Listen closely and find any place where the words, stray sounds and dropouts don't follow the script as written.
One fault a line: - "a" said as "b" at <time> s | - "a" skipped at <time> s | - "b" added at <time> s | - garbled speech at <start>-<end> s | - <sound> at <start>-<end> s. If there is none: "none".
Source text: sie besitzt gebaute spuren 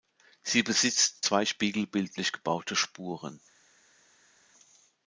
- "zwei spiegelbildlich" added at 1.2 s